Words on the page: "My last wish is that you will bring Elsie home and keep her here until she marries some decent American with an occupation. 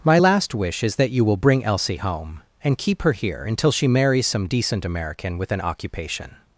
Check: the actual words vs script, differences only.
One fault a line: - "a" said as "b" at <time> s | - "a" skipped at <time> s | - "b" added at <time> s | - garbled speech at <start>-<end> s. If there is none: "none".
none